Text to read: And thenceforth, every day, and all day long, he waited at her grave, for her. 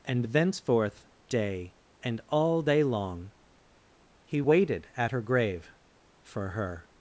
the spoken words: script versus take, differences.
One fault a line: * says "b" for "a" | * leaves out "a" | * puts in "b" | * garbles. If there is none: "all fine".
* leaves out "every"